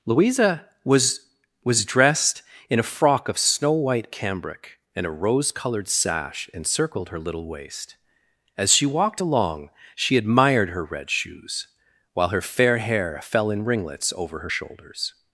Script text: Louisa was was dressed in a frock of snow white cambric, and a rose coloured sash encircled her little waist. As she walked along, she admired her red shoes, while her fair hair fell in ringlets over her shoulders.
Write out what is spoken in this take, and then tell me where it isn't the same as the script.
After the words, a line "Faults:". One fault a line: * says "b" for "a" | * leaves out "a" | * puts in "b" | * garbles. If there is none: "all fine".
Louisa was was dressed in a frock of snow white cambric, and a rose coloured sash encircled her little waist. As she walked along, she admired her red shoes, while her fair hair fell in ringlets over her shoulders.
Faults:
all fine